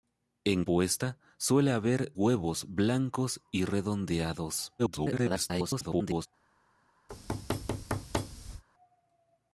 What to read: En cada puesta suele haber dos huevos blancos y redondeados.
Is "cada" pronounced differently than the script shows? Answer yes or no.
yes